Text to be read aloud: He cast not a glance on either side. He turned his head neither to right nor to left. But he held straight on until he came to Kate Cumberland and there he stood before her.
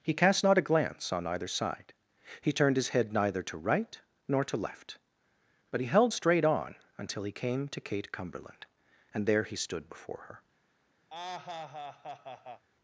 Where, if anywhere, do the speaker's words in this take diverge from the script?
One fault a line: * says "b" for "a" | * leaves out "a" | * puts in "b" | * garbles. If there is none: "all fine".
all fine